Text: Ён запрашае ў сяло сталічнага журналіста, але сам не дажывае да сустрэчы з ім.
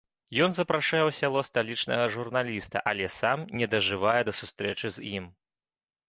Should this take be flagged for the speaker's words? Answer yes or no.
no